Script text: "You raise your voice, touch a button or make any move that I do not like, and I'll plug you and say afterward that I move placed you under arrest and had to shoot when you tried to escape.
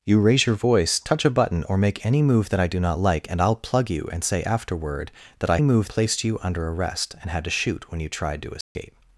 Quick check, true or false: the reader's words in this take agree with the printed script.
true